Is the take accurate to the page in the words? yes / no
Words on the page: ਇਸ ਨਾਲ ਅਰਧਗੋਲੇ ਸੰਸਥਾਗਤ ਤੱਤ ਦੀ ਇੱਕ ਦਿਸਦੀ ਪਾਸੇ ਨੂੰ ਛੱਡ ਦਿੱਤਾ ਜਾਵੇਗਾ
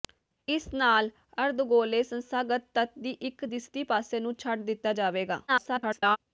no